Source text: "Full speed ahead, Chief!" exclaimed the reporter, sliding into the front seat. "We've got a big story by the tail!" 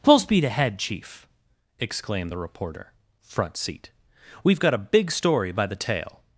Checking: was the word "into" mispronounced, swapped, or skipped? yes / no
yes